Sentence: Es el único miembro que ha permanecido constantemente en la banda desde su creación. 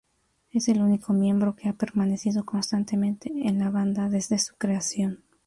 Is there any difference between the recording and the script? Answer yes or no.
no